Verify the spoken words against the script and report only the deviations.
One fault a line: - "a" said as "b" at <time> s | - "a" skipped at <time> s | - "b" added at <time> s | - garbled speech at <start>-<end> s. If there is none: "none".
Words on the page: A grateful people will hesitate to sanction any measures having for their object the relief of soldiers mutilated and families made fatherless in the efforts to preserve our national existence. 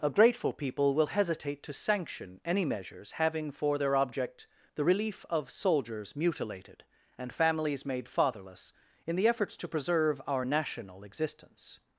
none